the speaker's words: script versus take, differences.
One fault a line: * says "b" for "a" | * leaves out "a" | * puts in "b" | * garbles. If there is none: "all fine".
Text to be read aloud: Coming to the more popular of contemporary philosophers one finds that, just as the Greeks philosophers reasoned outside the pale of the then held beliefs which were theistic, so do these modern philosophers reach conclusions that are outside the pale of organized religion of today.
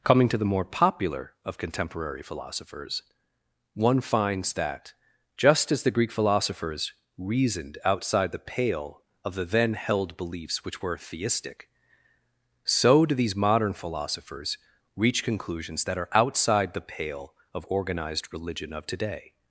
* says "Greek" for "Greeks"